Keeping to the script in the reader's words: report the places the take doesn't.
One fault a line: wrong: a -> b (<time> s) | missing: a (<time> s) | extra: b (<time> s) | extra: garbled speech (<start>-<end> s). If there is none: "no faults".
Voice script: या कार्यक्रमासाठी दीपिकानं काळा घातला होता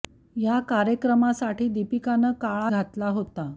no faults